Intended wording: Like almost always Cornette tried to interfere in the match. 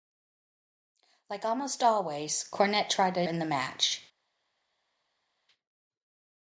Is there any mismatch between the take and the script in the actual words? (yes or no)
yes